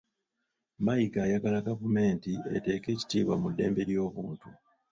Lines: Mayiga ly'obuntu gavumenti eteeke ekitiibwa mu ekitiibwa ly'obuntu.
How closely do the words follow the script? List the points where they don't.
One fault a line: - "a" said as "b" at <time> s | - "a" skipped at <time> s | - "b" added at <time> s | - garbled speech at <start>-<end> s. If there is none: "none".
- "ly'obuntu" said as "ayagala" at 1.3 s
- "ekitiibwa" said as "ddembe" at 3.5 s